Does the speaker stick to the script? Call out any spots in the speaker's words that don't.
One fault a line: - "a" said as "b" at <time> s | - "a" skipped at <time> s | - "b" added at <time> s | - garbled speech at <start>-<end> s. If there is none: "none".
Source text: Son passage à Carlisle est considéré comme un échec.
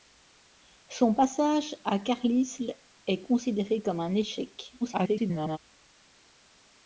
- garbled speech at 4.8-5.6 s